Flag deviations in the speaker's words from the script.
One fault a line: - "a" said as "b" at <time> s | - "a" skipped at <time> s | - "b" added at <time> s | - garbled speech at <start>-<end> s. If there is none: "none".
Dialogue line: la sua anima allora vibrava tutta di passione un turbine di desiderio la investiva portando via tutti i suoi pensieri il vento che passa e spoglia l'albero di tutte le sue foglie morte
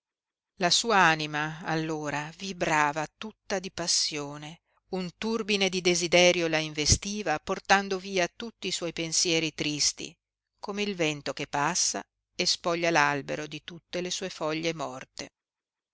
- "tristi come" added at 9.5 s